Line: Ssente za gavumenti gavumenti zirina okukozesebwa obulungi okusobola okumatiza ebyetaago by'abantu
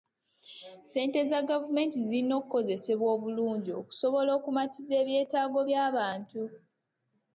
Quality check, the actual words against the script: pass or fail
fail